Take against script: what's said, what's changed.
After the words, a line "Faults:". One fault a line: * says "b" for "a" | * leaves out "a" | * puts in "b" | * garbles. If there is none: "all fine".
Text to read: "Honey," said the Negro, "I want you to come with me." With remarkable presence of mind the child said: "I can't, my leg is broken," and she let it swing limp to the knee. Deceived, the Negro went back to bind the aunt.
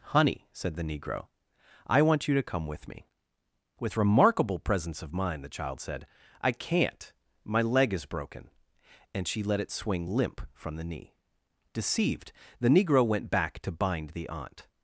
"Honey," said the Negro, "I want you to come with me." With remarkable presence of mind the child said: "I can't, my leg is broken," and she let it swing limp from the knee. Deceived, the Negro went back to bind the aunt.
Faults:
* says "from" for "to"